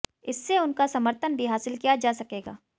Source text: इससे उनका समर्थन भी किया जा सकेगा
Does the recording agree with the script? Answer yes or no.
no